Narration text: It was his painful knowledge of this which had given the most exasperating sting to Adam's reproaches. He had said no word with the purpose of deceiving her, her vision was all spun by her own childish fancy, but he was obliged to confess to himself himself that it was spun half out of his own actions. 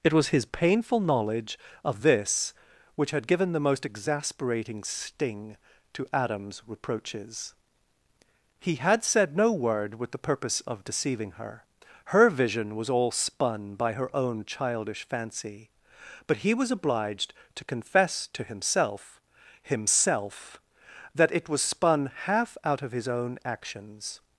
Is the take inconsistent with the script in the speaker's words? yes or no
no